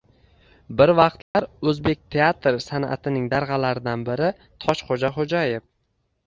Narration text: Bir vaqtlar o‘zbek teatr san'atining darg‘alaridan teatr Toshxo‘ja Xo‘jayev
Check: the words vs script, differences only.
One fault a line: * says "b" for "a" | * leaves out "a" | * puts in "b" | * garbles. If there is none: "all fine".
* says "biri" for "teatr"